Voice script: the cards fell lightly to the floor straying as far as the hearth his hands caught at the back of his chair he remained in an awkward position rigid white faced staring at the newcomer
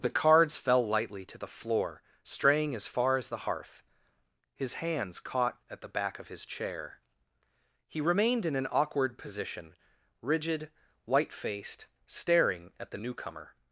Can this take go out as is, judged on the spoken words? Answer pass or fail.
pass